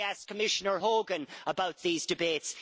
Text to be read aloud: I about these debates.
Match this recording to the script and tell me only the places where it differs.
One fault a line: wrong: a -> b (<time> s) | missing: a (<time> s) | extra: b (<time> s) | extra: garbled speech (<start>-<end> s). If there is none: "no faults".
extra: asked Commissioner Hogan (0.1 s)